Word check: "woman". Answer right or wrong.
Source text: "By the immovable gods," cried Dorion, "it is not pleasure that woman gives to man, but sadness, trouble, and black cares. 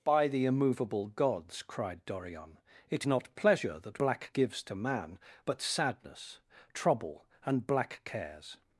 wrong